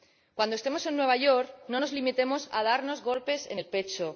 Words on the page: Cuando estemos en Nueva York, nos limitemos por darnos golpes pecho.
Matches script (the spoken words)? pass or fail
fail